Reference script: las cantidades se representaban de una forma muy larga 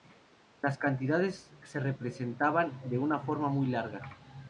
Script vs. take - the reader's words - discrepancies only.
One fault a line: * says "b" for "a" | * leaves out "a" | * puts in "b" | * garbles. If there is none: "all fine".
all fine